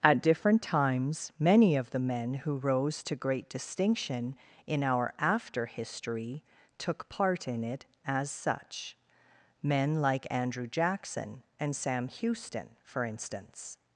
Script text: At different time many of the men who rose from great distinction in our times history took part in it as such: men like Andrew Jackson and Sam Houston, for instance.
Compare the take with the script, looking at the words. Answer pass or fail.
fail